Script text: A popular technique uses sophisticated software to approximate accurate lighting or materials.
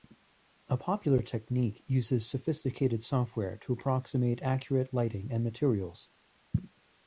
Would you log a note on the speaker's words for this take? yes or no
yes